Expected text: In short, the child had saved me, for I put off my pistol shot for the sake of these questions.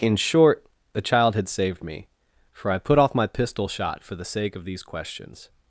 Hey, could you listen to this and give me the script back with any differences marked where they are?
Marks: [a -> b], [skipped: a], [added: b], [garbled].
In short, the child had saved me, for I put off my pistol shot for the sake of these questions.